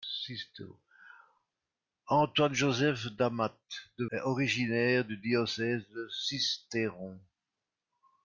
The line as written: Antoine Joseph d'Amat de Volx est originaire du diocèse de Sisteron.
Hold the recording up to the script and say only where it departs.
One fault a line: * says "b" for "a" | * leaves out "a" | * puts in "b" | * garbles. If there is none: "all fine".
* leaves out "Volx"